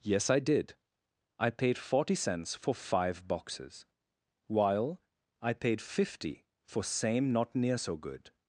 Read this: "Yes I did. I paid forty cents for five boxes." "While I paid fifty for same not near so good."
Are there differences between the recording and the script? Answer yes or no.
no